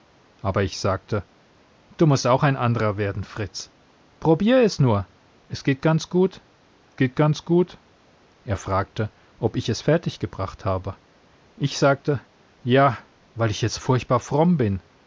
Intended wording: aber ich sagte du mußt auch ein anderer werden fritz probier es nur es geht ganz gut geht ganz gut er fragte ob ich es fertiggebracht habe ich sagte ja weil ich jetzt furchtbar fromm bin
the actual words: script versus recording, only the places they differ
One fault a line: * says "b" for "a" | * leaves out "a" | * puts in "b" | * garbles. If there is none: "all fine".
all fine